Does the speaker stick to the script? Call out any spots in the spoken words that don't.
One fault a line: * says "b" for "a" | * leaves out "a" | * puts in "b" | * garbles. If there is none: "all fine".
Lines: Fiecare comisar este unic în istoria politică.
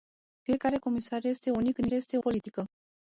* says "este" for "istoria"